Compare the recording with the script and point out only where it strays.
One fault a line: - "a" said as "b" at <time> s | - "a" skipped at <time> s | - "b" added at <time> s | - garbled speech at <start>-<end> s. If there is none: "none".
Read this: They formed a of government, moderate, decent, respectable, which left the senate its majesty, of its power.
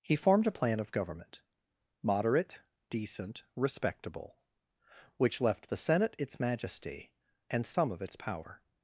- "They" said as "He" at 0.0 s
- "plan" added at 0.5 s
- "and some" added at 7.5 s